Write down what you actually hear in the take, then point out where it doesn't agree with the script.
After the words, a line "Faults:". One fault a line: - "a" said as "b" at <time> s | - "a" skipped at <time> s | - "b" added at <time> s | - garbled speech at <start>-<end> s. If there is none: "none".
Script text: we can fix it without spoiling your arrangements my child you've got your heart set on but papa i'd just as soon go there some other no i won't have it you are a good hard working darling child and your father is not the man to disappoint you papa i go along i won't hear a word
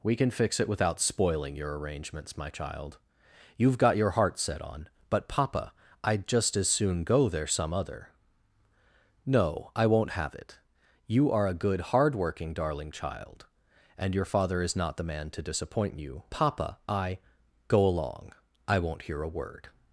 we can fix it without spoiling your arrangements my child you've got your heart set on but papa i'd just as soon go there some other no i won't have it you are a good hard working darling child and your father is not the man to disappoint you papa i go along i won't hear a word
Faults:
none